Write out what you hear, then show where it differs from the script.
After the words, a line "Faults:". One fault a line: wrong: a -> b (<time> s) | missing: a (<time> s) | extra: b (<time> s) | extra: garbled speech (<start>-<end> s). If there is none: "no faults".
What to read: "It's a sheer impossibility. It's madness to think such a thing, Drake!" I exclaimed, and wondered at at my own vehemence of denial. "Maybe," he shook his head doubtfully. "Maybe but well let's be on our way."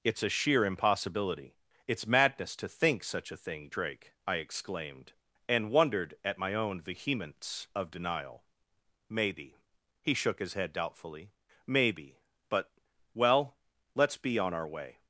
"It's a sheer impossibility. It's madness to think such a thing, Drake!" I exclaimed, and wondered at my own vehemence of denial. "Maybe," he shook his head doubtfully. "Maybe but well let's be on our way."
Faults:
missing: at (6.4 s)